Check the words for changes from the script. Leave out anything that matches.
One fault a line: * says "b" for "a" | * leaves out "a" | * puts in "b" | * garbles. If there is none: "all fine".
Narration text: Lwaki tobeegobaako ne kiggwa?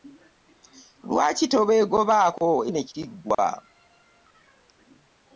all fine